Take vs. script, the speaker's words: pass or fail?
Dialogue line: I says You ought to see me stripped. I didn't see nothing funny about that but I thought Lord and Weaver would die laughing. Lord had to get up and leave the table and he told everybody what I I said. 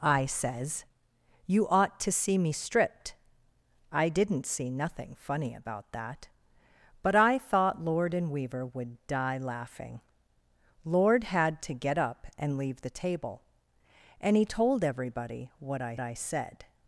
pass